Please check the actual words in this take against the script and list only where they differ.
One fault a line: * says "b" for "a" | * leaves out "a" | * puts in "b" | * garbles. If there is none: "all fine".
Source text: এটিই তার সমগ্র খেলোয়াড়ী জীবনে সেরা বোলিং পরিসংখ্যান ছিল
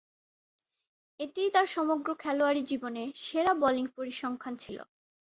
all fine